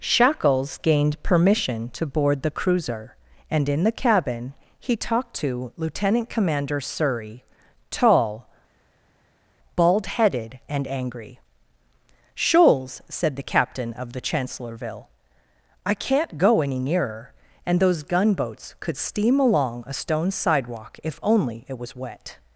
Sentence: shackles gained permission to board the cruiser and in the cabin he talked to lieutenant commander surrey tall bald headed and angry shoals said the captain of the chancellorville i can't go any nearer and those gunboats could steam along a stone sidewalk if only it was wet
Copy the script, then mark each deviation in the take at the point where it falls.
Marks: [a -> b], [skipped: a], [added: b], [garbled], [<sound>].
shackles gained permission to board the cruiser and in the cabin he talked to lieutenant commander surrey tall bald headed and angry shoals said the captain of the chancellorville i can't go any nearer and those gunboats could steam along a stone sidewalk if only it was wet